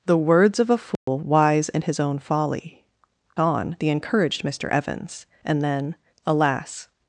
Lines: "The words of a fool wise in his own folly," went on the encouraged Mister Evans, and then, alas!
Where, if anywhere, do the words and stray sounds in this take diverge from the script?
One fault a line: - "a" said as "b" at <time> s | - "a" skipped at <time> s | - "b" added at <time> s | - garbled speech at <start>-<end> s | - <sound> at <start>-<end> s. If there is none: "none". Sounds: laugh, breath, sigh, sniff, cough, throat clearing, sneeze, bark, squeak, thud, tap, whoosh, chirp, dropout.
- dropout at 1.0-1.1 s
- "went" skipped at 2.8 s